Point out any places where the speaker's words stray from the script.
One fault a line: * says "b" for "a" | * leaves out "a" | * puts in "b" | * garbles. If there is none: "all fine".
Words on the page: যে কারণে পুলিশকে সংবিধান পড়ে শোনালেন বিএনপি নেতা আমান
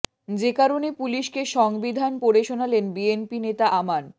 all fine